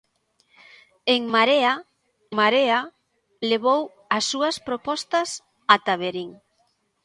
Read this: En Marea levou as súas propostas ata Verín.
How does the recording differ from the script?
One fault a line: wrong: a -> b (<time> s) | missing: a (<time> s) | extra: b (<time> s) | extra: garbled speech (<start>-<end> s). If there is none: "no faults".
extra: Marea (2.4 s)